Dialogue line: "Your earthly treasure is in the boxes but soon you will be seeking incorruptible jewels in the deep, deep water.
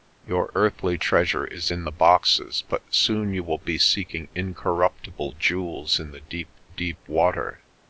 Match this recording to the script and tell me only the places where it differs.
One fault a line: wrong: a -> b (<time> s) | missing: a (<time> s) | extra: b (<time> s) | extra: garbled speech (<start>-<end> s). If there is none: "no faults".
no faults